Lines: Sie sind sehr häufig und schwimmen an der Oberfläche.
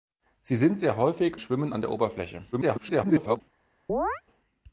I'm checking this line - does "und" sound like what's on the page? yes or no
no